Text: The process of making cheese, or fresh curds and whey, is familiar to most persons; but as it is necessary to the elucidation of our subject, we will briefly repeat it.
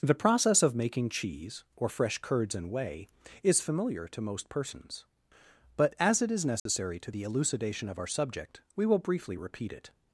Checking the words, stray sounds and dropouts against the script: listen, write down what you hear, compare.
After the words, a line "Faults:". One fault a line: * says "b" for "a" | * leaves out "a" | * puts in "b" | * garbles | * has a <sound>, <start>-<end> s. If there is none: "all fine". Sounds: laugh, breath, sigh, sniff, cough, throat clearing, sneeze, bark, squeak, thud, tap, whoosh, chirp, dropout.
The process of making cheese, or fresh curds and whey, is familiar to most persons; but as it is necessary to the elucidation of our subject, we will briefly repeat it.
Faults:
* has a dropout, 6.6-6.7 s